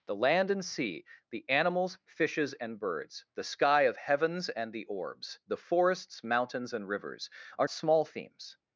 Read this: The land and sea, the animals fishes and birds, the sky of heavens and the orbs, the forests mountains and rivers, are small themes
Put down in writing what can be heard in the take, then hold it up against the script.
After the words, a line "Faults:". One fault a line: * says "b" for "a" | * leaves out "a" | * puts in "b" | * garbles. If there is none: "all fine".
The land and sea, the animals fishes and birds, the sky of heavens and the orbs, the forests mountains and rivers, are small themes
Faults:
all fine